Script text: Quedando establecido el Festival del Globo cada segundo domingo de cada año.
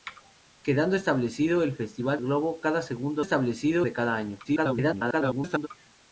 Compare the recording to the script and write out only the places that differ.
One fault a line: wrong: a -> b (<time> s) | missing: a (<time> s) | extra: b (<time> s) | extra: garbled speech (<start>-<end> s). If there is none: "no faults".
missing: del (2.2 s)
wrong: domingo -> establecido (3.2 s)
extra: garbled speech (4.4-5.7 s)